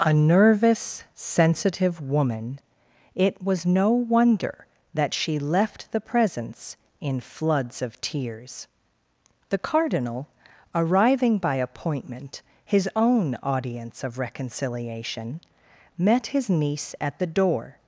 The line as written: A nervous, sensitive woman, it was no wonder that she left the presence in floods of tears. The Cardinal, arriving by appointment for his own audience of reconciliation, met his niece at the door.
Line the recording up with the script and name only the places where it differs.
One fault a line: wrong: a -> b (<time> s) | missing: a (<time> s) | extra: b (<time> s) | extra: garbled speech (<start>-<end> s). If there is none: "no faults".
missing: for (12.4 s)